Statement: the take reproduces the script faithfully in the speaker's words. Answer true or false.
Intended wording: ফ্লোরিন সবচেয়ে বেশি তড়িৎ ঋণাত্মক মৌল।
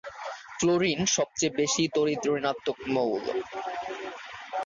true